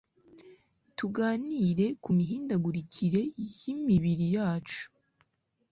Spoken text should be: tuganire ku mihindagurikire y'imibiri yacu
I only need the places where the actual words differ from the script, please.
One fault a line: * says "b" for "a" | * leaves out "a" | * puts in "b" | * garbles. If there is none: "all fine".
all fine